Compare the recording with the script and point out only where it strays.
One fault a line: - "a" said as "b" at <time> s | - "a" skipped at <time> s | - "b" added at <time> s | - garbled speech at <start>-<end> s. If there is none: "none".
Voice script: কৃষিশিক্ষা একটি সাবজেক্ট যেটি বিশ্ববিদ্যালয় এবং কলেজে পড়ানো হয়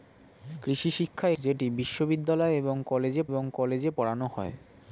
- "একটি সাবজেক্ট যেটি বিশ্ববিদ্যালয়" said as "যেটি বিশ্ববিদ্যালয় এবং কলেজে" at 1.4 s